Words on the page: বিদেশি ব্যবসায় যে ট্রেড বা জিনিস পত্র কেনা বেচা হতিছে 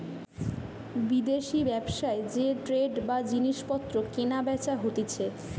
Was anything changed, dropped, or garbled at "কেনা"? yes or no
no